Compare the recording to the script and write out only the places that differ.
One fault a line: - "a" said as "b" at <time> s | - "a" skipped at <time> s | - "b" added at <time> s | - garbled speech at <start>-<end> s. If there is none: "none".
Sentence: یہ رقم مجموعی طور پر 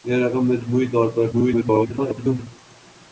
- garbled speech at 1.3-2.5 s